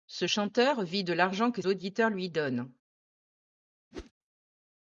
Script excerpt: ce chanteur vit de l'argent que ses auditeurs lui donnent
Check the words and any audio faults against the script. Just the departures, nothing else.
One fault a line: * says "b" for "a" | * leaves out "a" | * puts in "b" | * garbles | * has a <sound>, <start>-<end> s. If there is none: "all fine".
* leaves out "ses"
* has a whoosh, 3.9-4.1 s